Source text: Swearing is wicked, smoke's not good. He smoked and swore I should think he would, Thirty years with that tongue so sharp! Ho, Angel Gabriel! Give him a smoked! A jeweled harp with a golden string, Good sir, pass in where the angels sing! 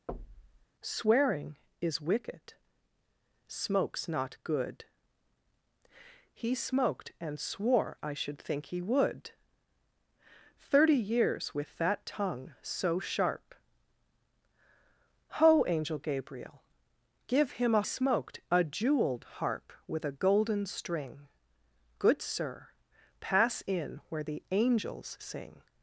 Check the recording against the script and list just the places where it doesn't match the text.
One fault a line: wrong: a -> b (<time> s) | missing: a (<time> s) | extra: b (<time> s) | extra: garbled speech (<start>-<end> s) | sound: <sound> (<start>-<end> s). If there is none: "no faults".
sound: thud (0.1-0.7 s)